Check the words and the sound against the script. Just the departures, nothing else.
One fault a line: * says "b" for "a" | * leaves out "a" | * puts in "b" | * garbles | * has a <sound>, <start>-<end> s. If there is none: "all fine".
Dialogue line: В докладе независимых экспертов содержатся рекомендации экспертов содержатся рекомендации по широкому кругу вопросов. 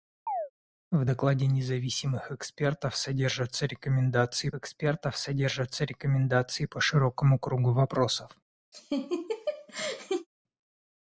* has a chirp, 0.3-0.5 s
* has a laugh, 8.7-10.3 s